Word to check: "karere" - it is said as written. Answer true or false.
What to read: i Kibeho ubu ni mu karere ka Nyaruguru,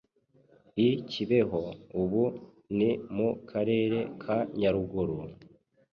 true